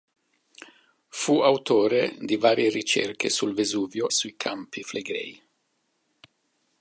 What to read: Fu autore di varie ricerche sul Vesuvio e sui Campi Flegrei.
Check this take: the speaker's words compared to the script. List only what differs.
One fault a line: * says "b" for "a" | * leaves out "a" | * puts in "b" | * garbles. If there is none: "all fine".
* leaves out "e"